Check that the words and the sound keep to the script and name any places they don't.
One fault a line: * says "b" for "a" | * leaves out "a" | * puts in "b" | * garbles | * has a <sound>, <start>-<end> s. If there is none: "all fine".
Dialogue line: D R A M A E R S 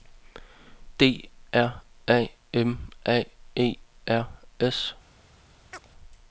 * has a chirp, 5.7-5.9 s